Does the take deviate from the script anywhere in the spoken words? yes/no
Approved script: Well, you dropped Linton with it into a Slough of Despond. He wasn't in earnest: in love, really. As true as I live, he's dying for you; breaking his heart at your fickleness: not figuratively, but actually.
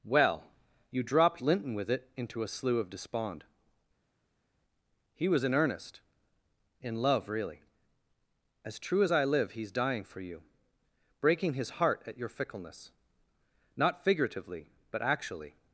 yes